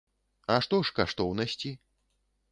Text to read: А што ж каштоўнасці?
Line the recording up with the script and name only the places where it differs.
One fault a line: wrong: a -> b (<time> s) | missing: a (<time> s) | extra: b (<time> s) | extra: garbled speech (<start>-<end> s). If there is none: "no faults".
no faults